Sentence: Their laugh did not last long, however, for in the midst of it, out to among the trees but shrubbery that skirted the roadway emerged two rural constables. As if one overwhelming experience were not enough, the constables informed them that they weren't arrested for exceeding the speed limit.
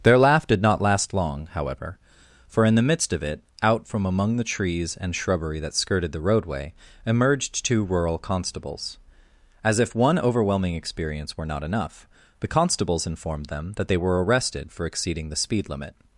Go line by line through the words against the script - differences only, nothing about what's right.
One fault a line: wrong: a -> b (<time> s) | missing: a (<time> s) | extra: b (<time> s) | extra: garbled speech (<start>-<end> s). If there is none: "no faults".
wrong: to -> from (3.9 s)
wrong: but -> and (5.0 s)
wrong: weren't -> were (14.0 s)